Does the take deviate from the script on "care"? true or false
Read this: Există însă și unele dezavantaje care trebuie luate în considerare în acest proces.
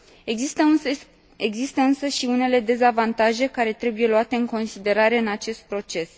false